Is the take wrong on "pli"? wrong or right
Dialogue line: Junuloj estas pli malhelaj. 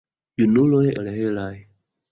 wrong